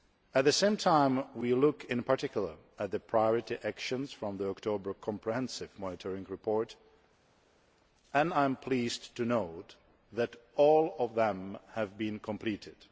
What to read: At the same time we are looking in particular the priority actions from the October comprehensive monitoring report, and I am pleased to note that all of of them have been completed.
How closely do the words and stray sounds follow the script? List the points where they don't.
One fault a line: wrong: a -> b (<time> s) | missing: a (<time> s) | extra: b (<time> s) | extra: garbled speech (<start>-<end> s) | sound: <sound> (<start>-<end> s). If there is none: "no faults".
extra: at (2.8 s)
missing: of (11.1 s)